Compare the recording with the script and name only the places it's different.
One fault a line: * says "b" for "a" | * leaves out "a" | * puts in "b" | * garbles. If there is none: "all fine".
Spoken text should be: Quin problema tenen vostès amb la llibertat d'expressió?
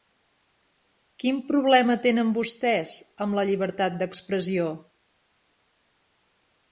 all fine